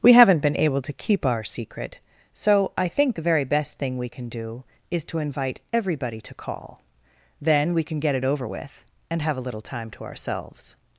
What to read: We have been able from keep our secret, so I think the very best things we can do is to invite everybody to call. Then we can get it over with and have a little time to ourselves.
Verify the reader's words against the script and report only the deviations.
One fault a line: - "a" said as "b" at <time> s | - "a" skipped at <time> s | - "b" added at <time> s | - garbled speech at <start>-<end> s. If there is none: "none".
- "have" said as "haven't" at 0.1 s
- "from" said as "to" at 0.8 s
- "things" said as "thing" at 3.8 s